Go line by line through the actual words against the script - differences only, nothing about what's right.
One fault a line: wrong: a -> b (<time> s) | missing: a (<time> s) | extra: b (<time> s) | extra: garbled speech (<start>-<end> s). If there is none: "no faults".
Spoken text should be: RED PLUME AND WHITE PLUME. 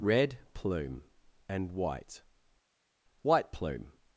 extra: WHITE (3.2 s)